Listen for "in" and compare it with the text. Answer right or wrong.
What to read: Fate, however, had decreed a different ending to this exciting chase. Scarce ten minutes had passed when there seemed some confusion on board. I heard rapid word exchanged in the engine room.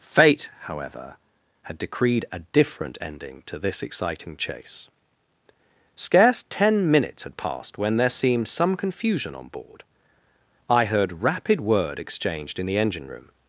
right